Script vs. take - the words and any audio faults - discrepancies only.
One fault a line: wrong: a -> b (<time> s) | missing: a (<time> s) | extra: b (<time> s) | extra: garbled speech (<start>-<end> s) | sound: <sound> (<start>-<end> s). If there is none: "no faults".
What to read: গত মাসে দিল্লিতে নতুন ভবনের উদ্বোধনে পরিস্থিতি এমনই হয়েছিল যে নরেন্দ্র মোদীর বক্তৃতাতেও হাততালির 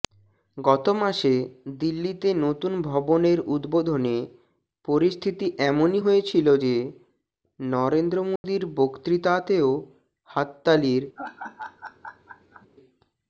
sound: dropout (8.4-8.4 s)
sound: laugh (11.2-12.7 s)